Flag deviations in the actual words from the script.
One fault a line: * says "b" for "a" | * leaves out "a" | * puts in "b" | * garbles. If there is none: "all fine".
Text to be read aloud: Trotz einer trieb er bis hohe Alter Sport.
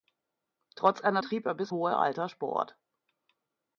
all fine